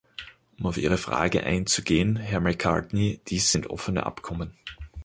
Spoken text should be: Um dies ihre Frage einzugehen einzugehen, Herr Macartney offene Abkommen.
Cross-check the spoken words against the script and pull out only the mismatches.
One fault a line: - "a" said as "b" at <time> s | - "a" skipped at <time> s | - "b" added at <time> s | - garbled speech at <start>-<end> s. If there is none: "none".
- "dies" said as "auf" at 0.7 s
- "einzugehen" skipped at 2.2 s
- "dies sind" added at 3.3 s